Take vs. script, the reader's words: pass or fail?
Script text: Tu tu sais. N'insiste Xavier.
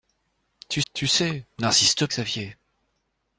pass